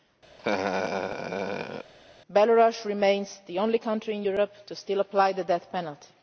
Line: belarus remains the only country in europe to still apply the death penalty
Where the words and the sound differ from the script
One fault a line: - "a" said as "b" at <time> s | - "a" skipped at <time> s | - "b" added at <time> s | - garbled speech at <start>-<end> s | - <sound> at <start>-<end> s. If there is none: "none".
- laugh at 0.4-1.9 s